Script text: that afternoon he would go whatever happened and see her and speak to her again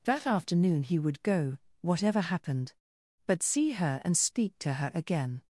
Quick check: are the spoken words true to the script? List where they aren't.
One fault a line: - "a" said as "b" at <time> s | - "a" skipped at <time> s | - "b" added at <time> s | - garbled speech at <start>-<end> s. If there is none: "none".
- "and" said as "but" at 3.3 s